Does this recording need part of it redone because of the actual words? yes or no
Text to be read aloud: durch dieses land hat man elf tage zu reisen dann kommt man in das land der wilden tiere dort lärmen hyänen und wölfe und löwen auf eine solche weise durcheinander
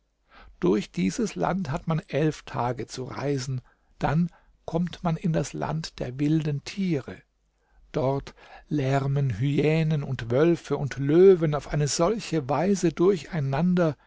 no